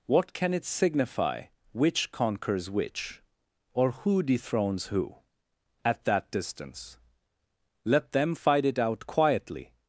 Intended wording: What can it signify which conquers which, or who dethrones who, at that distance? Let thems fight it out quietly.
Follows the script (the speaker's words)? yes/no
no